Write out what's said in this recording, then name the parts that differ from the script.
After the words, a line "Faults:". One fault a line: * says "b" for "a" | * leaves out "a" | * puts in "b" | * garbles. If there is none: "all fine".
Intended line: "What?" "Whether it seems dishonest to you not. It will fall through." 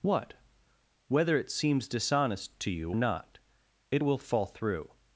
"What?" "Whether it seems dishonest to you not. It will fall through."
Faults:
all fine